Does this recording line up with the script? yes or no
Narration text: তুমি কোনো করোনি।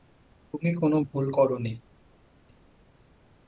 no